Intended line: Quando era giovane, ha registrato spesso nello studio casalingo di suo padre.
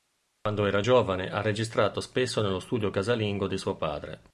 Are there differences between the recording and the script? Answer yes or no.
no